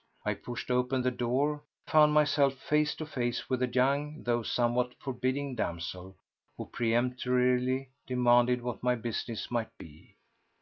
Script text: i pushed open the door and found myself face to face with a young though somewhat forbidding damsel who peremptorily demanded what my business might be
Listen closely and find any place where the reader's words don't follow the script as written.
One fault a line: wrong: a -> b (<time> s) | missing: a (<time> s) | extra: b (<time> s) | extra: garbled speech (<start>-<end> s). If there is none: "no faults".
missing: and (1.6 s)